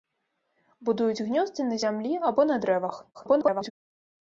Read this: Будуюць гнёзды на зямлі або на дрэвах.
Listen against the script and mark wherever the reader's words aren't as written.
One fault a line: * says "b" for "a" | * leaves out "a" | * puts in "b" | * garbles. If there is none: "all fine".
* garbles